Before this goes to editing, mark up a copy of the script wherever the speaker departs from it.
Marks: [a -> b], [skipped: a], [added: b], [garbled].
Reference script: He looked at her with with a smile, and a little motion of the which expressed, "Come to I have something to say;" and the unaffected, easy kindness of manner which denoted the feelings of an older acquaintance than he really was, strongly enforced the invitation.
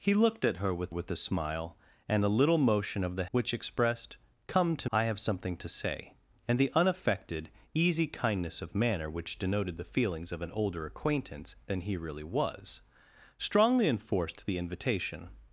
He looked at her with with a smile, and a little motion of the which expressed, "Come to I have something to say;" and the unaffected, easy kindness of manner which denoted the feelings of an older acquaintance than he really was, strongly enforced the invitation.